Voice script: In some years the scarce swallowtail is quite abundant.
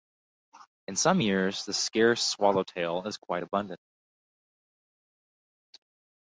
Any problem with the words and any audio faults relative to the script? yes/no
no